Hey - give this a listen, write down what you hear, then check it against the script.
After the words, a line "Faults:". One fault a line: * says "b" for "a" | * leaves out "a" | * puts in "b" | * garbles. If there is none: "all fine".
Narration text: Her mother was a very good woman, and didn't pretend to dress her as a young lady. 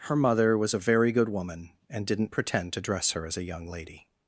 Her mother was a very good woman, and didn't pretend to dress her as a young lady.
Faults:
all fine